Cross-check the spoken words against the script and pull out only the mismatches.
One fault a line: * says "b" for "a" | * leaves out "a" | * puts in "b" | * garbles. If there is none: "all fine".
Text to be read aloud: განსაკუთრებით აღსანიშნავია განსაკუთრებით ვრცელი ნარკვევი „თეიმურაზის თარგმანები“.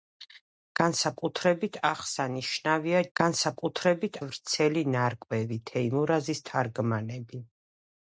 all fine